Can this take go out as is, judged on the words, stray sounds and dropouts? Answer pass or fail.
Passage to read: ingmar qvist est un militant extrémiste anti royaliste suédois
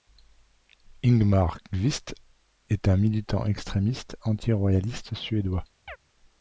fail